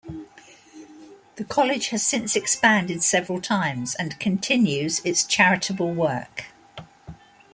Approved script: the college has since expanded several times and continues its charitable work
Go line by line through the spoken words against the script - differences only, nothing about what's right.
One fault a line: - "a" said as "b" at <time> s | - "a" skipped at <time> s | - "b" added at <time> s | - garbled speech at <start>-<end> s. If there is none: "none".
none